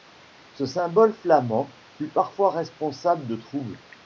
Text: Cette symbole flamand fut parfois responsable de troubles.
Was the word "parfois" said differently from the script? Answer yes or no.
no